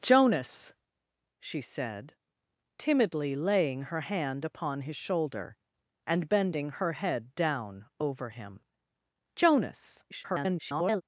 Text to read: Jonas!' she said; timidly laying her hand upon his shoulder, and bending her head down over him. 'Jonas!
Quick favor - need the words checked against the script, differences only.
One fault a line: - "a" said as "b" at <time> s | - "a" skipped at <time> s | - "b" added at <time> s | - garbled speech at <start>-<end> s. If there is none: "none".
- garbled speech at 10.1-11.0 s